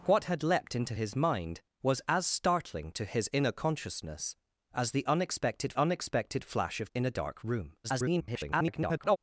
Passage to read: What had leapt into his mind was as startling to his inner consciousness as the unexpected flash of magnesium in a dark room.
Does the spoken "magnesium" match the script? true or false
false